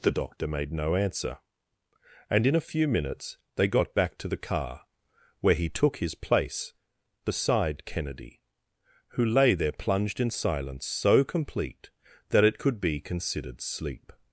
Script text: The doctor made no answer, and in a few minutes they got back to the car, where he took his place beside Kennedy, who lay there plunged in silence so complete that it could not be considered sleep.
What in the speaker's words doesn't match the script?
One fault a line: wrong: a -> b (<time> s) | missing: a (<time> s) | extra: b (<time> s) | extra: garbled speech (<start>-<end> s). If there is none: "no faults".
missing: not (12.8 s)